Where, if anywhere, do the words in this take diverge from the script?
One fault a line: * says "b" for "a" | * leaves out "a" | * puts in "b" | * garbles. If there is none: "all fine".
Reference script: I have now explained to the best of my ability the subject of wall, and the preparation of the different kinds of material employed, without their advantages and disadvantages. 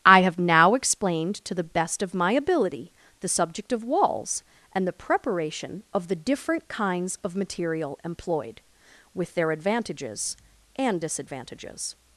* says "walls" for "wall"
* says "with" for "without"